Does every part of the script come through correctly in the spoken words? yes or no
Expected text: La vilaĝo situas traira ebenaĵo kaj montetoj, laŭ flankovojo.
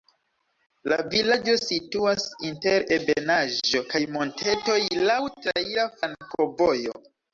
no